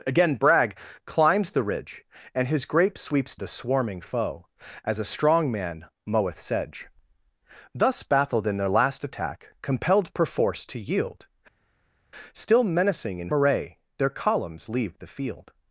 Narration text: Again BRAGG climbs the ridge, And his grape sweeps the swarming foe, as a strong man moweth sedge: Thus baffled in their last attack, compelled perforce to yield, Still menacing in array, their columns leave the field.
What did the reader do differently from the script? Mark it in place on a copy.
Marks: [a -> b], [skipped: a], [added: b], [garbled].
Again BRAGG climbs the ridge, And his grape sweeps the swarming foe, as a strong man moweth sedge: Thus baffled in their last attack, compelled perforce to yield, Still menacing in array, their columns leave the field.